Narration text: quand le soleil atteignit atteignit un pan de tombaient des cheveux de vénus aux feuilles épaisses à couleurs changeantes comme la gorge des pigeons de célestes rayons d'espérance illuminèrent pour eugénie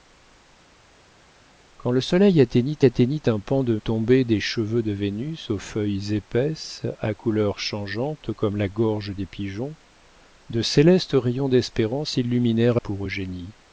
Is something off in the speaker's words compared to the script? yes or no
no